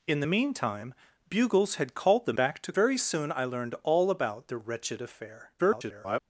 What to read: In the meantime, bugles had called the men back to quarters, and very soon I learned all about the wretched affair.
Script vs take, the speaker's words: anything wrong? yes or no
yes